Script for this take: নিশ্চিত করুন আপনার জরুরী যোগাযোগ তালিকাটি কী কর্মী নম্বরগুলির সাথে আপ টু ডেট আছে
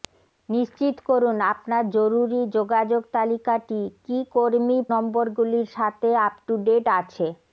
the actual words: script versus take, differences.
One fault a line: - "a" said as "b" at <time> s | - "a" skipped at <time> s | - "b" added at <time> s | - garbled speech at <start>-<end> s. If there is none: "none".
none